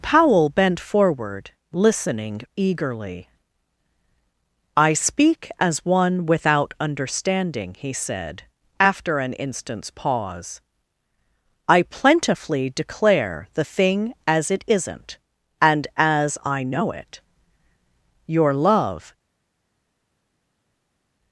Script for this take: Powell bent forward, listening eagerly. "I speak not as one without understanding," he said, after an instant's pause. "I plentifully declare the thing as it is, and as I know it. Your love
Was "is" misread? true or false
true